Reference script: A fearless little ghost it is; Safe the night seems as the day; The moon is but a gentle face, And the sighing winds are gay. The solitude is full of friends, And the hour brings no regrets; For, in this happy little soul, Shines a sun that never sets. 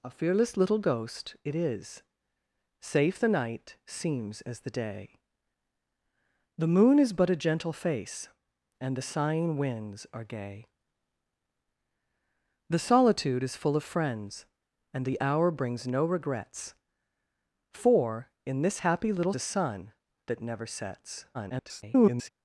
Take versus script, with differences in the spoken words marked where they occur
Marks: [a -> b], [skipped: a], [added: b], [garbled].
A fearless little ghost it is; Safe the night seems as the day; The moon is but a gentle face, And the sighing winds are gay. The solitude is full of friends, And the hour brings no regrets; For, in this happy little [skipped: soul, Shines] a sun that never sets. [garbled]